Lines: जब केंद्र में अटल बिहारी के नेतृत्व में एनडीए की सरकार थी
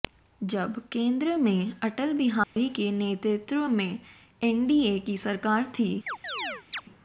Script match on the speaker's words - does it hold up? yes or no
yes